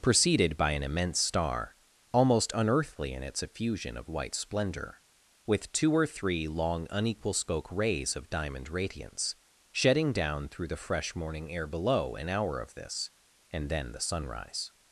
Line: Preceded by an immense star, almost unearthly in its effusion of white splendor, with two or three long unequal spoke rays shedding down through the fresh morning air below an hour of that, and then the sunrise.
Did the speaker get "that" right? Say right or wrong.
wrong